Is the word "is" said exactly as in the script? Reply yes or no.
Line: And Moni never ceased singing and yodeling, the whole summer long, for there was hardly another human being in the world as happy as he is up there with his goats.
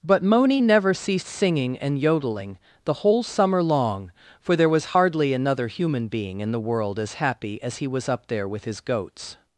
no